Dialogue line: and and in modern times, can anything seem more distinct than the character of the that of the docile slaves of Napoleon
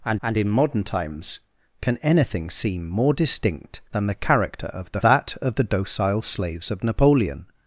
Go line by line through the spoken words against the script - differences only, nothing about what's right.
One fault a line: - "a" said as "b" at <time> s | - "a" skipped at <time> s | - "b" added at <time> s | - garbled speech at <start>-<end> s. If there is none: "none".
none